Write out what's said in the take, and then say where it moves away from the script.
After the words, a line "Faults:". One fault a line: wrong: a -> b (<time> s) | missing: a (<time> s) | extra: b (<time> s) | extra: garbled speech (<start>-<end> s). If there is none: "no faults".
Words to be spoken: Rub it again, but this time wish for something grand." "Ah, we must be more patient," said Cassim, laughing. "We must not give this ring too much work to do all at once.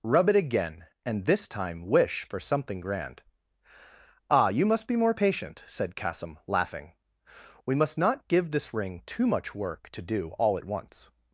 Rub it again, and this time wish for something grand." "Ah, you must be more patient," said Cassim, laughing. "We must not give this ring too much work to do all at once.
Faults:
wrong: but -> and (1.1 s)
wrong: we -> you (4.5 s)